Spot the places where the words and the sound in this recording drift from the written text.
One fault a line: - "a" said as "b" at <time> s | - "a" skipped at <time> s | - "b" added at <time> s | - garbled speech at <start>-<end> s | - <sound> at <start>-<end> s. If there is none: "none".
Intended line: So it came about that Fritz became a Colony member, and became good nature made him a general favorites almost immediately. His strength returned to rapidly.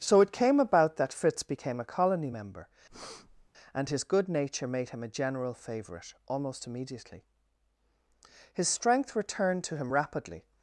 - breath at 2.9-3.5 s
- "became" said as "his" at 3.9 s
- "favorites" said as "favorite" at 5.5 s
- "him" added at 9.8 s